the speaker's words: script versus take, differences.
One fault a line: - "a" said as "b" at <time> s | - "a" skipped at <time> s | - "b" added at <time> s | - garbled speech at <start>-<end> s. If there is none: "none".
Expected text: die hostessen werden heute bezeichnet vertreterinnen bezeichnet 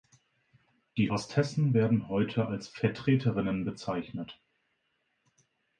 - "bezeichnet" said as "als" at 2.5 s